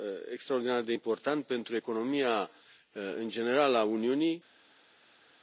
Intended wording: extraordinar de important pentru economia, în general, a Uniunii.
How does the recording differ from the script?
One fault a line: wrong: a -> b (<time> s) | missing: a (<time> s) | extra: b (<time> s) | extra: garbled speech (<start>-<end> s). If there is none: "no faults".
no faults